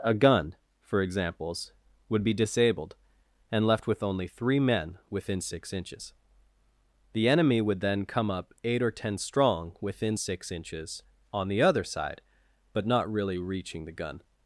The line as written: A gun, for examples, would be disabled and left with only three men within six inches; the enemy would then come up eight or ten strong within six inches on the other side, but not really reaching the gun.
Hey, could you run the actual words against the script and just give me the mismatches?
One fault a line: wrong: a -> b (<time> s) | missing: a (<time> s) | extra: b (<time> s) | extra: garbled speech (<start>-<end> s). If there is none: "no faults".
no faults